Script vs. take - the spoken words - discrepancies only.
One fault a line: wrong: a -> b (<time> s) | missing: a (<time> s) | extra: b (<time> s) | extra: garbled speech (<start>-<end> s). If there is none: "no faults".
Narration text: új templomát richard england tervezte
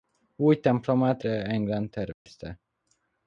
missing: richard (1.2 s)